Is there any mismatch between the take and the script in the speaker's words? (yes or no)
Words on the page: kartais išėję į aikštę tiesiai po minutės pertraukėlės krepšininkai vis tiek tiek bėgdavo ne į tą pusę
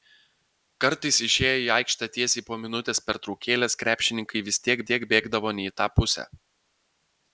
no